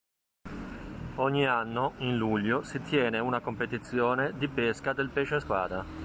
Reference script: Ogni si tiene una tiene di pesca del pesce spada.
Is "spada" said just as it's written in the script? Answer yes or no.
yes